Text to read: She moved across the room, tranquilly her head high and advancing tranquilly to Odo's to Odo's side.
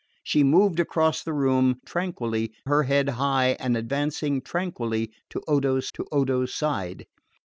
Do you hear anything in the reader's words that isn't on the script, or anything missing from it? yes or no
no